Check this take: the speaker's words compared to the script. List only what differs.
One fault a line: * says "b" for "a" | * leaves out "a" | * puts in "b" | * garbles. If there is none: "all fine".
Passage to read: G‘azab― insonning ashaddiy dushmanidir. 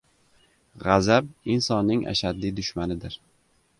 all fine